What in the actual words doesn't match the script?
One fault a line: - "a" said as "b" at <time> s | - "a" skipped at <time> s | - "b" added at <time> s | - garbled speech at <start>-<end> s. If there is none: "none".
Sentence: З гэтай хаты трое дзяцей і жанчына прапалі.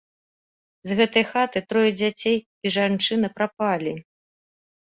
none